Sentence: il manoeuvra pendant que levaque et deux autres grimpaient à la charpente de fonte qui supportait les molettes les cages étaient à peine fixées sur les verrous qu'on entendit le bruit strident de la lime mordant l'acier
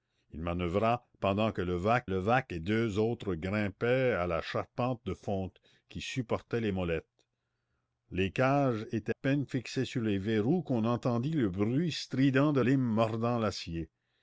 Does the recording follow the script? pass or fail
fail